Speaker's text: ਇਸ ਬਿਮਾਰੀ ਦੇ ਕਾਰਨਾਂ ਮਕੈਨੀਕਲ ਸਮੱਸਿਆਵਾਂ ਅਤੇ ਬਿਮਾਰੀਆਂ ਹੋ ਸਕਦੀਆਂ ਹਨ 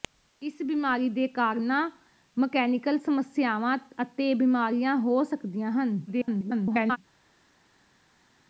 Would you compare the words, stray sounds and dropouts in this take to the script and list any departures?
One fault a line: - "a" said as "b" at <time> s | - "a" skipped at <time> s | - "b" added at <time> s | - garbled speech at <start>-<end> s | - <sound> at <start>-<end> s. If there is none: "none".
- garbled speech at 6.1-7.0 s